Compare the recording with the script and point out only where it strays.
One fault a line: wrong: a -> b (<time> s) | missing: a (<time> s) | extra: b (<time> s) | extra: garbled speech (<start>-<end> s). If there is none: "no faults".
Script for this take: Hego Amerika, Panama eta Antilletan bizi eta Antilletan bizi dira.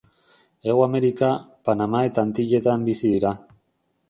missing: eta Antilletan bizi (3.1 s)